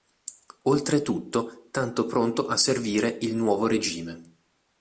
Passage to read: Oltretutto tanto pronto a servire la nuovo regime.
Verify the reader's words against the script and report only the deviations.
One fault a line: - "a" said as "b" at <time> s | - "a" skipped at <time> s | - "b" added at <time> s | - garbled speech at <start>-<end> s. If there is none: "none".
- "la" said as "il" at 3.2 s